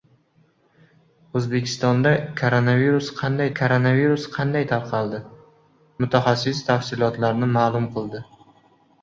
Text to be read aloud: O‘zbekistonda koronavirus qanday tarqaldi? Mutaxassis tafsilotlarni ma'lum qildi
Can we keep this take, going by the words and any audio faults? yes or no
no